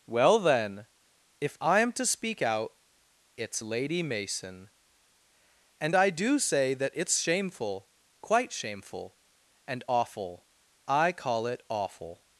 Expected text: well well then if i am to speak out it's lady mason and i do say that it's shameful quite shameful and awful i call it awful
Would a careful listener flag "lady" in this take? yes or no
no